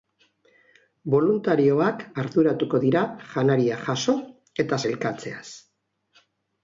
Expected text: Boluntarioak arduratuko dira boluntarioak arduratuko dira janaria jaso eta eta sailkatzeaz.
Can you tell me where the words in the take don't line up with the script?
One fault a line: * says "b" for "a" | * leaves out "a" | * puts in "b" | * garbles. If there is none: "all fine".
* leaves out "boluntarioak arduratuko dira"
* leaves out "eta"